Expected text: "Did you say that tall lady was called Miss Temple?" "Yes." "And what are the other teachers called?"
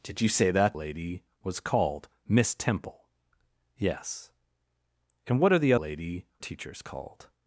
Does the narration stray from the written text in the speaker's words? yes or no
yes